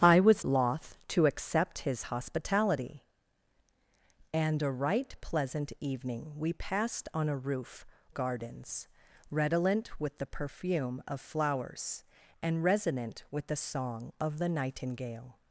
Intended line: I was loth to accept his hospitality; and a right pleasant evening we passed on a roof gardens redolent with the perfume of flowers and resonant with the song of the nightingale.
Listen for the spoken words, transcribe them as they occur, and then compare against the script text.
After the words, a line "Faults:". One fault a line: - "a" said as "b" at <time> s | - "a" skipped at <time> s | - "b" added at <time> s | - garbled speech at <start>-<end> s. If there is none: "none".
I was loth to accept his hospitality; and a right pleasant evening we passed on a roof gardens redolent with the perfume of flowers and resonant with the song of the nightingale.
Faults:
none